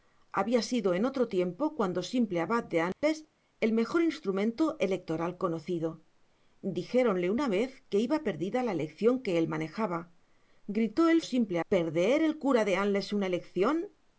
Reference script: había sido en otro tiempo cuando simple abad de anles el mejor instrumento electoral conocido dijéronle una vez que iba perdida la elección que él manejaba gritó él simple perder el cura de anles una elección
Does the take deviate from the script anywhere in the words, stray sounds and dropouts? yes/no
yes